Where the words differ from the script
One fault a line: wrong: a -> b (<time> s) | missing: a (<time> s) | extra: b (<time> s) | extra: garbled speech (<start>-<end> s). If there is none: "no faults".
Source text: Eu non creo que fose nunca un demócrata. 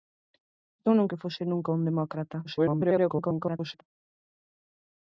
missing: creo (1.1 s)
extra: garbled speech (2.4-3.8 s)